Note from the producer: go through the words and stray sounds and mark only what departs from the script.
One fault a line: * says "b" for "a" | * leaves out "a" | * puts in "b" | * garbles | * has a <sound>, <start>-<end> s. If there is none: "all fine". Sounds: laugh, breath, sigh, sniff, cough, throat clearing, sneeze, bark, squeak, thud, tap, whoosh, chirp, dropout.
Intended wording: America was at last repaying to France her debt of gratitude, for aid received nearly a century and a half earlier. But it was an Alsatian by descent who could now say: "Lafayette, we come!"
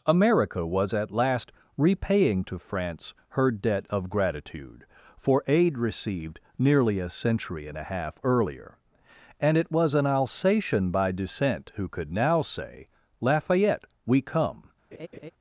* says "And" for "But"
* has a laugh, 14.9-15.3 s